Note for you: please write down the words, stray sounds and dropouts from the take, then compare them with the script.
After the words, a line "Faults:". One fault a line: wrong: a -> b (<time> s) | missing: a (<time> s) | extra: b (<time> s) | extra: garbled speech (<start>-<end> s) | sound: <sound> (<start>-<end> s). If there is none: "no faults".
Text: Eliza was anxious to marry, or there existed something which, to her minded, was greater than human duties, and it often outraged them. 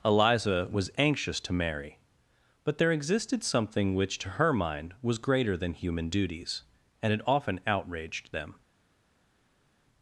Eliza was anxious to marry, but there existed something which, to her mind, was greater than human duties, and it often outraged them.
Faults:
wrong: or -> but (2.6 s)
wrong: minded -> mind (4.5 s)